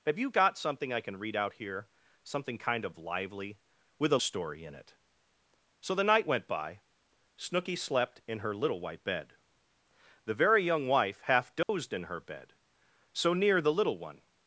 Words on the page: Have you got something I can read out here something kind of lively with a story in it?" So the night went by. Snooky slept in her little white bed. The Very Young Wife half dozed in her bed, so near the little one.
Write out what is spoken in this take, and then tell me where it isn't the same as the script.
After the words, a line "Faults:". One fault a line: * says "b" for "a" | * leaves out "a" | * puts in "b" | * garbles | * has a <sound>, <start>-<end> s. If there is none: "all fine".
Have you got something I can read out here something kind of lively with a story in it?" So the night went by. Snooky slept in her little white bed. The Very Young Wife half dozed in her bed, so near the little one.
Faults:
* has a dropout, 11.6-11.7 s